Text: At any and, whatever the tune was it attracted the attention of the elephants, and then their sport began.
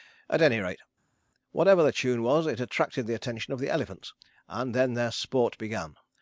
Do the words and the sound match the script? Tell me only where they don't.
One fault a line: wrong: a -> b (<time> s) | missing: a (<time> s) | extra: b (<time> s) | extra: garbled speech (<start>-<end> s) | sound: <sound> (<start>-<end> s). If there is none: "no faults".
wrong: and -> rate (0.6 s)